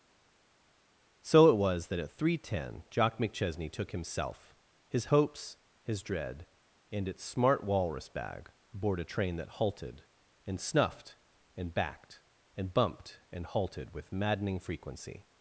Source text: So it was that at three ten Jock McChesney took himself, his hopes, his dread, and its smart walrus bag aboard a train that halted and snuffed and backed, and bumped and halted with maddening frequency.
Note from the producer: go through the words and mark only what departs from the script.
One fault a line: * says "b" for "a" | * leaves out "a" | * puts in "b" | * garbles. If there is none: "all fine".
all fine